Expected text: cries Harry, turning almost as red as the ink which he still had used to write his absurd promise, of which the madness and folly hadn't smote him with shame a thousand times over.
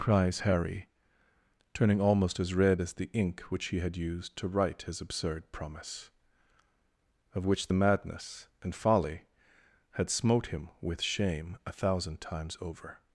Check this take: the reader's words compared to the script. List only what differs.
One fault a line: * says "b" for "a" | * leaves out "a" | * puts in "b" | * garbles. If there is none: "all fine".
* leaves out "still"
* says "had" for "hadn't"